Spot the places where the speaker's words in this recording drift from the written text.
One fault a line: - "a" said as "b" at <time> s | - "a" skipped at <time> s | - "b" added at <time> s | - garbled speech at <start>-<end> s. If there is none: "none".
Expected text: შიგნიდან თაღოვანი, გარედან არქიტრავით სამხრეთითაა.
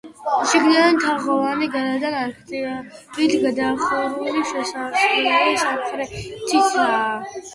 - "გადახურული შესასვლელი" added at 3.4 s